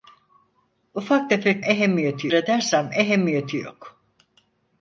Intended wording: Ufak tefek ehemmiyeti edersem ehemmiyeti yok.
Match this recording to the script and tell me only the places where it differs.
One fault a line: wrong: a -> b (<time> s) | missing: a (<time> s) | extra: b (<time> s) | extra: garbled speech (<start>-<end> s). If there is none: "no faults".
no faults